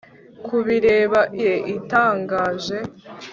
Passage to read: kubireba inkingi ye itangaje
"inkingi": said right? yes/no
no